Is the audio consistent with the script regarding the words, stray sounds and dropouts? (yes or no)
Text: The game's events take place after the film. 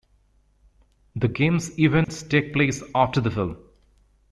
no